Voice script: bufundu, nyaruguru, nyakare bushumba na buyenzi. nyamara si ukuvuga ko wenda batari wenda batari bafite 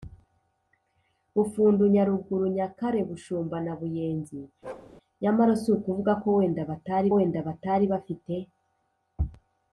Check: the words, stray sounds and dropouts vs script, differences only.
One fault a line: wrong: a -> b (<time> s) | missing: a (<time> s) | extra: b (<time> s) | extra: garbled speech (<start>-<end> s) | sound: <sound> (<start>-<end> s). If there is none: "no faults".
sound: bark (4.6-4.9 s)